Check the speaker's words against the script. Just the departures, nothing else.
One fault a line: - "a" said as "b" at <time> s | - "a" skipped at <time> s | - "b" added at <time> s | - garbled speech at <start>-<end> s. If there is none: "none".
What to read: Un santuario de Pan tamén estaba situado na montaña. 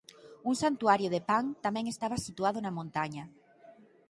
none